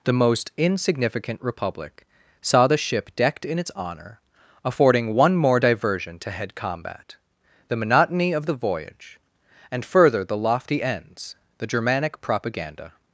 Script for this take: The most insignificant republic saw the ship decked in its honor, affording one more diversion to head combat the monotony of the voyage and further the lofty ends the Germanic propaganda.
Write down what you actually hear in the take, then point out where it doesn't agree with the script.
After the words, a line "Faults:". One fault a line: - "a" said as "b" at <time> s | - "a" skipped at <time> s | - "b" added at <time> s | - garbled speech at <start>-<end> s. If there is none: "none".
The most insignificant republic saw the ship decked in its honor, affording one more diversion to head combat the monotony of the voyage and further the lofty ends the Germanic propaganda.
Faults:
none